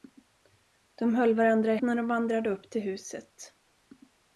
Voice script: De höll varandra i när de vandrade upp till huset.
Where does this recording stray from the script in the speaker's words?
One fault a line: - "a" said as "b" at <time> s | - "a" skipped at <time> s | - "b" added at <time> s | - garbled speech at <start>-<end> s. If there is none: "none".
none